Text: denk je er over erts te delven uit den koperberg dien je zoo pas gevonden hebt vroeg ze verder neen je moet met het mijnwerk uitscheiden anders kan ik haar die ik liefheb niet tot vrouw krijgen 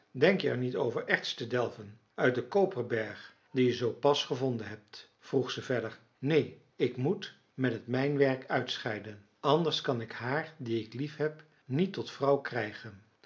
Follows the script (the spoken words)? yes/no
no